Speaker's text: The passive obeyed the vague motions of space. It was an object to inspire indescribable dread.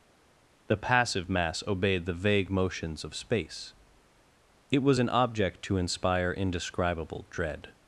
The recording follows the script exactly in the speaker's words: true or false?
false